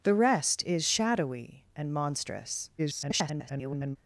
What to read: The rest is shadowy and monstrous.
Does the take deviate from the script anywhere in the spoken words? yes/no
yes